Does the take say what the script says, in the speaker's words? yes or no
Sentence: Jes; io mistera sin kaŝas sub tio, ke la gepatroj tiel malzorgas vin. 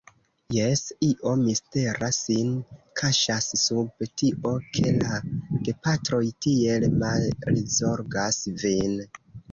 yes